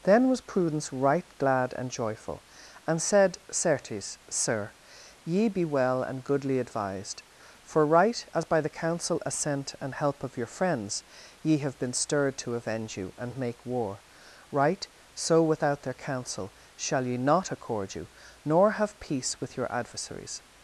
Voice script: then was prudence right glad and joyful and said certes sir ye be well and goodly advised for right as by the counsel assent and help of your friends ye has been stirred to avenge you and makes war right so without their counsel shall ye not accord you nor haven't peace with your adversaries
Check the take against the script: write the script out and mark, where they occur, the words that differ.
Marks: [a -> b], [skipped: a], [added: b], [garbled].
then was prudence right glad and joyful and said certes sir ye be well and goodly advised for right as by the counsel assent and help of your friends ye [has -> have] been stirred to avenge you and [makes -> make] war right so without their counsel shall ye not accord you nor [haven't -> have] peace with your adversaries